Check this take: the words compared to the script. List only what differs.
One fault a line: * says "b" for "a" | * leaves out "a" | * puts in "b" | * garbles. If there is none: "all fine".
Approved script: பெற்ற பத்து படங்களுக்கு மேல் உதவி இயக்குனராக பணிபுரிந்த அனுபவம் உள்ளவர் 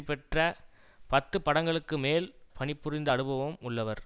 * leaves out "உதவி இயக்குனராக"